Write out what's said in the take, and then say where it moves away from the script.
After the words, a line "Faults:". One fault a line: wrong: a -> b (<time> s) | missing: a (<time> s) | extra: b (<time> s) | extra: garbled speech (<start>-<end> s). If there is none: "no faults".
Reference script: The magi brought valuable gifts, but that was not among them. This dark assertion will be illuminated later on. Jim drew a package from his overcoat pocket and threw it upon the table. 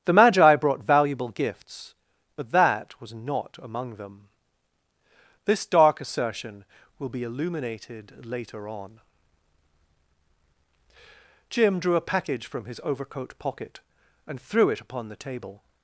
The magi brought valuable gifts, but that was not among them. This dark assertion will be illuminated later on. Jim drew a package from his overcoat pocket and threw it upon the table.
Faults:
no faults